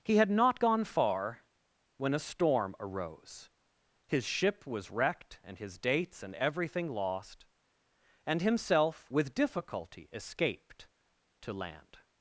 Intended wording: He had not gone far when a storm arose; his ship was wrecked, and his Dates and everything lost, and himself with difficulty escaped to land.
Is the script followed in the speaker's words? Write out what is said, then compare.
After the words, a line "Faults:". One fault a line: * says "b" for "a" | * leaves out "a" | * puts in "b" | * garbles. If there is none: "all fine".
He had not gone far when a storm arose; his ship was wrecked, and his Dates and everything lost, and himself with difficulty escaped to land.
Faults:
all fine